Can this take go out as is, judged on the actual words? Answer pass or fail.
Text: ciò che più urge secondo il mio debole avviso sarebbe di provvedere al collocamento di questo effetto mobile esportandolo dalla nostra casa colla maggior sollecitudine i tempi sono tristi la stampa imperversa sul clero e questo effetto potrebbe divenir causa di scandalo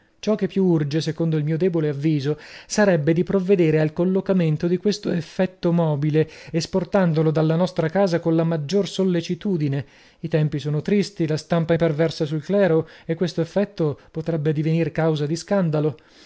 pass